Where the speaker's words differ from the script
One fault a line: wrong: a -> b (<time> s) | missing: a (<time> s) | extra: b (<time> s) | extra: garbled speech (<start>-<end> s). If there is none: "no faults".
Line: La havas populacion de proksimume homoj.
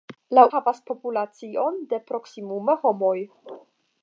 no faults